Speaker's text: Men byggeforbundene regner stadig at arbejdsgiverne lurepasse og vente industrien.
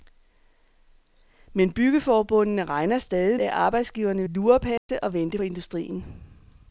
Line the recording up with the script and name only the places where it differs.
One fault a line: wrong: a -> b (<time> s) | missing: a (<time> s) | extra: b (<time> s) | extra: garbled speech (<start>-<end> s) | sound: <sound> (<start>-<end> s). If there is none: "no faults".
sound: dropout (4.8-4.9 s)